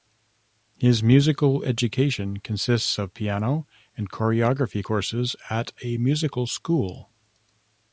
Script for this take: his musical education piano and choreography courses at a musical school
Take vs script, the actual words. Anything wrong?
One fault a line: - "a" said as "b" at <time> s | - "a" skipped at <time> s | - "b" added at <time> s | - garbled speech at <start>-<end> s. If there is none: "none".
- "consists of" added at 2.4 s